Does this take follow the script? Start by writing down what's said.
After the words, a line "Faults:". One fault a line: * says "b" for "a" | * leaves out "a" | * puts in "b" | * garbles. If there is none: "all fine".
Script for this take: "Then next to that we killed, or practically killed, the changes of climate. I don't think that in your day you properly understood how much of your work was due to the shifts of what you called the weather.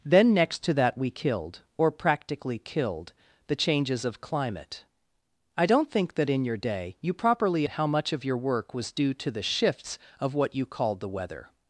"Then next to that we killed, or practically killed, the changes of climate. I don't think that in your day you properly how much of your work was due to the shifts of what you called the weather.
Faults:
* leaves out "understood"